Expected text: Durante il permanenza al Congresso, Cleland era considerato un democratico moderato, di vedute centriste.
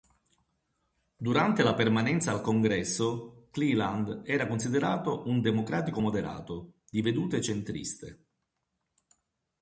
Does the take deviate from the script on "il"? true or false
true